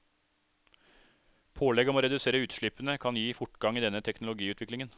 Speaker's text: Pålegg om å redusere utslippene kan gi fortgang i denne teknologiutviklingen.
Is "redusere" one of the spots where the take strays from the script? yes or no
no